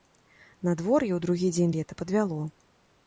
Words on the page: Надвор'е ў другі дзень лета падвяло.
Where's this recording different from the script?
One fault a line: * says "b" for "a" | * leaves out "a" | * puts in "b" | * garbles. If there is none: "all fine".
all fine